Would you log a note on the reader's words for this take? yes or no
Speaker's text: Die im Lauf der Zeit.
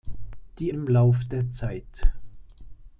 no